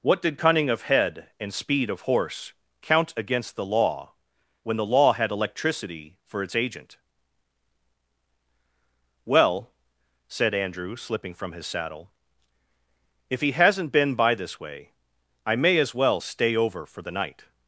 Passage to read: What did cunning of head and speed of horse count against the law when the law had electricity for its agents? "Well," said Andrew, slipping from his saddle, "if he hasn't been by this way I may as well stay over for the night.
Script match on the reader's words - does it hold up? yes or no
no